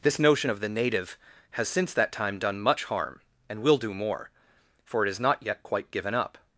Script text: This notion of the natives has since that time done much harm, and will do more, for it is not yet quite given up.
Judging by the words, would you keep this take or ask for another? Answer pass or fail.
fail